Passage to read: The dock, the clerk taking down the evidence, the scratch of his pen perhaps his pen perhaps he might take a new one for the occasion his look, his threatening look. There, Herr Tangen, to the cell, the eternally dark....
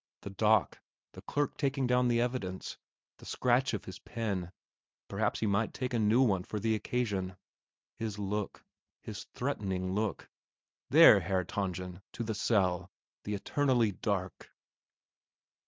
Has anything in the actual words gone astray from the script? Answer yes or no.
yes